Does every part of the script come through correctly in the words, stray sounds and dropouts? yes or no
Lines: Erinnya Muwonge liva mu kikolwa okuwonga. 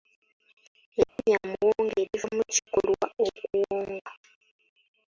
no